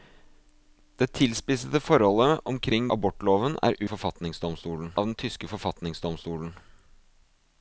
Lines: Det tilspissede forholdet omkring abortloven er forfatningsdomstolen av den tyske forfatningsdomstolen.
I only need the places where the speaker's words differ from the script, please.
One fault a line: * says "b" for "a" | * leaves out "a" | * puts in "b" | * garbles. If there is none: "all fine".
all fine